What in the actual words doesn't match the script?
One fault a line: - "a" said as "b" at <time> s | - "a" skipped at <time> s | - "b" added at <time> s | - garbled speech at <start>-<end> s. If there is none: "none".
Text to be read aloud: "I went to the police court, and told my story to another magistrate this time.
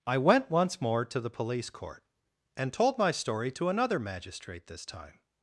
- "once more" added at 0.5 s